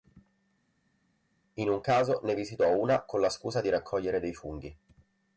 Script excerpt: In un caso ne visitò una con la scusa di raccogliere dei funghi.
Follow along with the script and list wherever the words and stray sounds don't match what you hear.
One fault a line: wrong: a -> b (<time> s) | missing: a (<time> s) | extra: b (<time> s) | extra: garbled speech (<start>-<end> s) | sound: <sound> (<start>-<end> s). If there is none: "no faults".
no faults